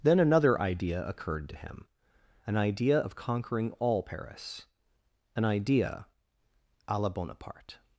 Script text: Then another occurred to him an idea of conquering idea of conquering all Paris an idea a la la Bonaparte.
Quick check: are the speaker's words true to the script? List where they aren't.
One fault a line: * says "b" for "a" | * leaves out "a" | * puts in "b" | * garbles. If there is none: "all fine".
* puts in "idea"
* leaves out "idea of conquering"
* leaves out "la"